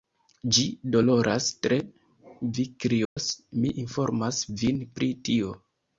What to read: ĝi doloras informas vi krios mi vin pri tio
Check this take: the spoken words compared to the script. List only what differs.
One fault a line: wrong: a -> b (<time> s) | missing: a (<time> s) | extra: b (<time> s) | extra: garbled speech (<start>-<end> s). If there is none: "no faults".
wrong: informas -> tre (1.6 s)
extra: informas (3.9 s)